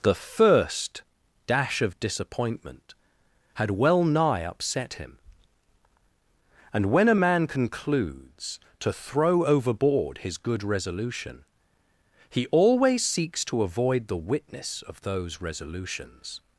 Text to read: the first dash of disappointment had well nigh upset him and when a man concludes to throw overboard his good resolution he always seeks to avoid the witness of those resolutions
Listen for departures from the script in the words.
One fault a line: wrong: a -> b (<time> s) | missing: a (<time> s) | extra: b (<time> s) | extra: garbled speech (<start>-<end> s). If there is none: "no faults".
no faults